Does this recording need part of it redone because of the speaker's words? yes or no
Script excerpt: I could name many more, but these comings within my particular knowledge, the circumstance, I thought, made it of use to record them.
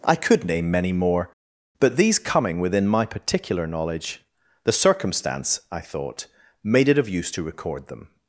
yes